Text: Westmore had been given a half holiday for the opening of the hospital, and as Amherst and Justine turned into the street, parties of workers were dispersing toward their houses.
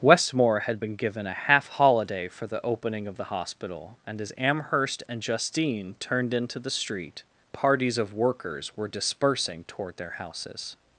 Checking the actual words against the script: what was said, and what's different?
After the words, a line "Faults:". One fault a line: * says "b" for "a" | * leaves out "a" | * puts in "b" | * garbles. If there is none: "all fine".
Westmore had been given a half holiday for the opening of the hospital, and as Amherst and Justine turned into the street, parties of workers were dispersing toward their houses.
Faults:
all fine